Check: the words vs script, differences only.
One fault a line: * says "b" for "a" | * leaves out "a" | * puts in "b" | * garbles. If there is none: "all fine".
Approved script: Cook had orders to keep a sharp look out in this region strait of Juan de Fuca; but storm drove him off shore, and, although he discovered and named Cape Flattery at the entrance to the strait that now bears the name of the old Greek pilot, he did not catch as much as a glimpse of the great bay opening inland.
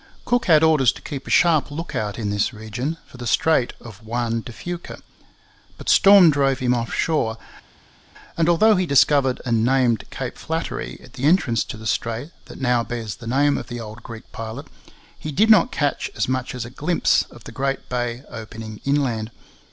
* puts in "for the"